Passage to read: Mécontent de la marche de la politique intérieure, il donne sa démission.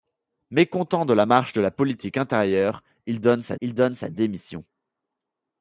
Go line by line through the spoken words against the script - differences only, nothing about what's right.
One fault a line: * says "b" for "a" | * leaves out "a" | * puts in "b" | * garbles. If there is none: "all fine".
* puts in "il donne sa"